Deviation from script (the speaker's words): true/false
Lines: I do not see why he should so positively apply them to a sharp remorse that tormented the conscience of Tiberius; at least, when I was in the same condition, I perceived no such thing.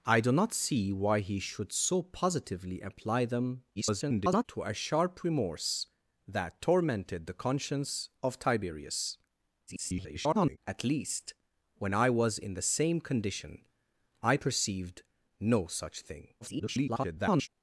true